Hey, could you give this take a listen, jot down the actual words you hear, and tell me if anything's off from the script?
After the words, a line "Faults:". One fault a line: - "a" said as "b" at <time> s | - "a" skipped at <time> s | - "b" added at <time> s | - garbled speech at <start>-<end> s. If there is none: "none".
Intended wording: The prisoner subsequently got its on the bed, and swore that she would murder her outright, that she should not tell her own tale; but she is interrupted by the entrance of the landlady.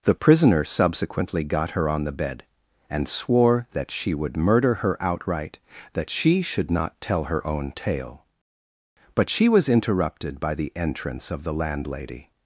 The prisoner subsequently got her on the bed, and swore that she would murder her outright, that she should not tell her own tale; but she was interrupted by the entrance of the landlady.
Faults:
- "its" said as "her" at 1.7 s
- "is" said as "was" at 9.5 s